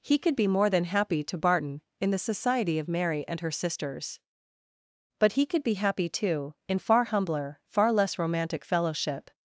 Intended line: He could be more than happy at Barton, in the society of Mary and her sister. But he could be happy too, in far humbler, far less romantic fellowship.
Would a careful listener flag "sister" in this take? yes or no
yes